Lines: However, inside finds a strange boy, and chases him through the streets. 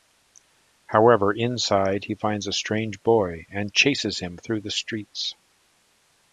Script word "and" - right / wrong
right